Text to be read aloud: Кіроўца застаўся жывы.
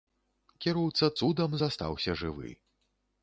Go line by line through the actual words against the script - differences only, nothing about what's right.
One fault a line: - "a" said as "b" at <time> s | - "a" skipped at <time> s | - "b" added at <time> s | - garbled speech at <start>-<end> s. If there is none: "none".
- "цудам" added at 1.2 s